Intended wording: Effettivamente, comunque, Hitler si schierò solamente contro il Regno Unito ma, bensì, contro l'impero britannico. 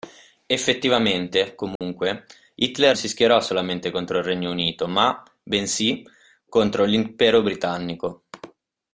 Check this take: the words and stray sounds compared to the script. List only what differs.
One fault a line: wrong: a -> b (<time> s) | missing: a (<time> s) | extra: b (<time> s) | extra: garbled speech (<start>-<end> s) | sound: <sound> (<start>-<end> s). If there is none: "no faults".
sound: dropout (1.8-1.8 s)